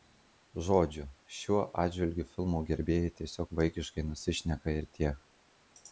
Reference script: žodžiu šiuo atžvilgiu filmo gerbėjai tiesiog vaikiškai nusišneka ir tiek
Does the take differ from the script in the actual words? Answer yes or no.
no